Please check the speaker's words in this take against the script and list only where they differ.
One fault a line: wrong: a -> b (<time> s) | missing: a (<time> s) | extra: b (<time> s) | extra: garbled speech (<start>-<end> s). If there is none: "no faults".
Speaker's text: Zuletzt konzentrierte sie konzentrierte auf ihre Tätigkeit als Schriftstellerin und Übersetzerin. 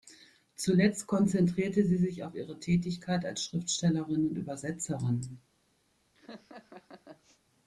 wrong: konzentrierte -> sich (2.0 s)